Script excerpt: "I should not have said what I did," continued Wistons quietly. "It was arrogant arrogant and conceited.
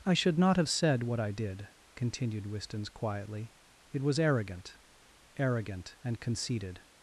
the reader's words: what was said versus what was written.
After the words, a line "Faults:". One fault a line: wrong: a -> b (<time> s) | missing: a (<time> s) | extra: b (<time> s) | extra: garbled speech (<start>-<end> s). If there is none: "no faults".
"I should not have said what I did," continued Wistons quietly. "It was arrogant arrogant and conceited.
Faults:
no faults